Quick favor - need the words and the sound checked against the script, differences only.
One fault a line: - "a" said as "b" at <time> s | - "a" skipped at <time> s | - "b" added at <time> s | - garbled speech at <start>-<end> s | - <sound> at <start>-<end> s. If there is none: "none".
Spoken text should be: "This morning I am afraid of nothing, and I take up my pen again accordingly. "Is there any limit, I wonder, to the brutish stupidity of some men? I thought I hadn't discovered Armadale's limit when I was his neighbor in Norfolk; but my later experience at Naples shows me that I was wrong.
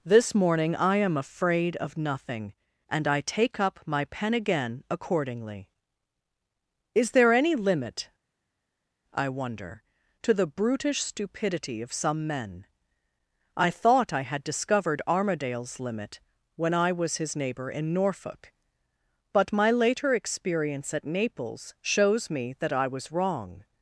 - "hadn't" said as "had" at 14.2 s